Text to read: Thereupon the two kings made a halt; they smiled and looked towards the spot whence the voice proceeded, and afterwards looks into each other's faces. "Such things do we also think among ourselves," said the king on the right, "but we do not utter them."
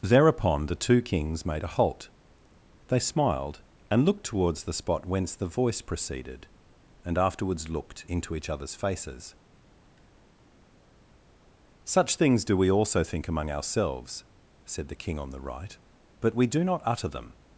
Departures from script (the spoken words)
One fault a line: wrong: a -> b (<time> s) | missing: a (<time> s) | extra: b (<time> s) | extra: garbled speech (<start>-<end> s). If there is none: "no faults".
wrong: looks -> looked (7.7 s)